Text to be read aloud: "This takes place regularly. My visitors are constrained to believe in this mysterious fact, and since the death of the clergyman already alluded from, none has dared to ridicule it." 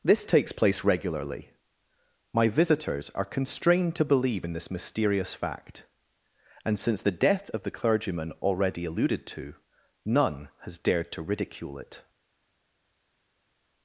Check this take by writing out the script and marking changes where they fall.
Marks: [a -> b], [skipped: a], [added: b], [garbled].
"This takes place regularly. My visitors are constrained to believe in this mysterious fact, and since the death of the clergyman already alluded [from, -> to] none has dared to ridicule it."